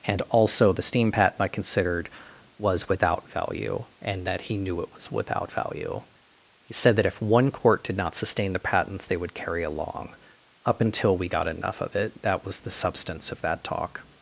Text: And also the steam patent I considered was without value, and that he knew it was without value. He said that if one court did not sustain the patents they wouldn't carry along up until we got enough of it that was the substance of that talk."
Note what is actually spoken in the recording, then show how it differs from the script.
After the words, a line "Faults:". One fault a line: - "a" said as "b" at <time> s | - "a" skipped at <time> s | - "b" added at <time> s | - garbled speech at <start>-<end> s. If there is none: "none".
And also the steam patent I considered was without value, and that he knew it was without value. He said that if one court did not sustain the patents they would carry along up until we got enough of it that was the substance of that talk."
Faults:
- "wouldn't" said as "would" at 9.2 s